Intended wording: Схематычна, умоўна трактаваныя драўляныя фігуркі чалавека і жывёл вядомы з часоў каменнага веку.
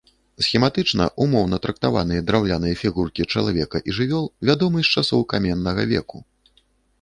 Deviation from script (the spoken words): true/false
false